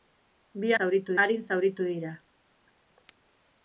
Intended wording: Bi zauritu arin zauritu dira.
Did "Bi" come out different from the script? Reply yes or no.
no